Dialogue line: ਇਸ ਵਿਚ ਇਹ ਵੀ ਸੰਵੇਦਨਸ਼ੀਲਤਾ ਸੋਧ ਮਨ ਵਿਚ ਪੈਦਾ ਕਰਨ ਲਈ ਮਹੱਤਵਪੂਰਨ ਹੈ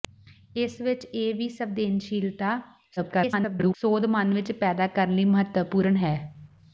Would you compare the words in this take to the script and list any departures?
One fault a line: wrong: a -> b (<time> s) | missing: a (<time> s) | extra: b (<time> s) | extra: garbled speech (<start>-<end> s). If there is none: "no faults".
extra: garbled speech (3.0-3.7 s)